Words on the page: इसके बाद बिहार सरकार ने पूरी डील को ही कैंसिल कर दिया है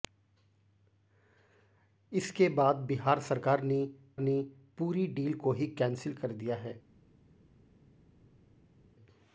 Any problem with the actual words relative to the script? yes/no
yes